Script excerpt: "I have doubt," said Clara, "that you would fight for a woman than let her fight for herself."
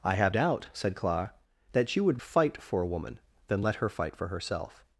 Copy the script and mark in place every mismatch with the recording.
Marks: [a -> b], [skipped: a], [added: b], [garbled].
"I have doubt," said Clara, "that you would fight for a woman than let her fight for herself."